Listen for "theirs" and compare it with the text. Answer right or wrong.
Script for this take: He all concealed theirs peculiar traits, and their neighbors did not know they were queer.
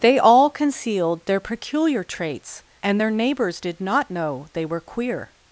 wrong